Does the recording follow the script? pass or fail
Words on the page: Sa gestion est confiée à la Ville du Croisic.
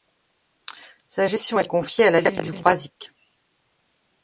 pass